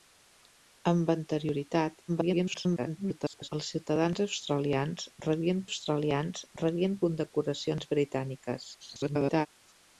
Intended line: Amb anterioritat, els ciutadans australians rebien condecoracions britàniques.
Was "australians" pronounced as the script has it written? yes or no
yes